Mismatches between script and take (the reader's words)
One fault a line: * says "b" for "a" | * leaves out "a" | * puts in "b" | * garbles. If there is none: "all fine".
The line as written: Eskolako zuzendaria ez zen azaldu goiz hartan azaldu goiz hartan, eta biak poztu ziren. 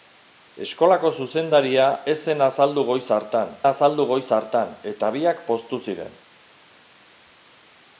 all fine